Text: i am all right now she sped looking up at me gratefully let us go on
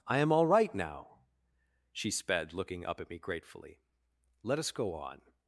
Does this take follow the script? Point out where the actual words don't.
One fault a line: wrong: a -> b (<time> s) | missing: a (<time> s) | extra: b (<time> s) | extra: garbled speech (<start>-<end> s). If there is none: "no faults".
no faults